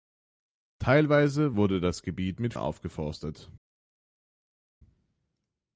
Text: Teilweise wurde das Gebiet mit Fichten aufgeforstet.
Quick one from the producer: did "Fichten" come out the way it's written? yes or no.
no